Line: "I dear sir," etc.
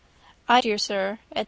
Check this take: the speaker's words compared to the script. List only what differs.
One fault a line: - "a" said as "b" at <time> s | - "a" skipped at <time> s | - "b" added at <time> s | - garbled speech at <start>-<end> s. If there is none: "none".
none